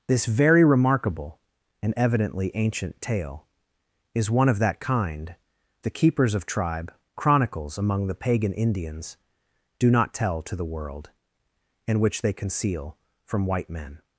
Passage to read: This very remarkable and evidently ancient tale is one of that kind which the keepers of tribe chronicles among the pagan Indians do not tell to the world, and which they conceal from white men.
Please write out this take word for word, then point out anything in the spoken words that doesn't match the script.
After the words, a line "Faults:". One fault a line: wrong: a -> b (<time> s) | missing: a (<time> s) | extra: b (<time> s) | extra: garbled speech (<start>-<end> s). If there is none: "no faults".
This very remarkable and evidently ancient tale is one of that kind the keepers of tribe chronicles among the pagan Indians do not tell to the world, and which they conceal from white men.
Faults:
missing: which (5.4 s)